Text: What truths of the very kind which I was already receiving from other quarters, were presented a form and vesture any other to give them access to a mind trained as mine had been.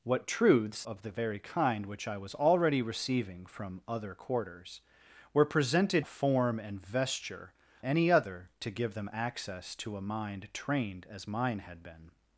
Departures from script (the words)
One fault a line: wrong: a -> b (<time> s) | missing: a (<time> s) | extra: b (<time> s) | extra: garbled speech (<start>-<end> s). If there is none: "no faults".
no faults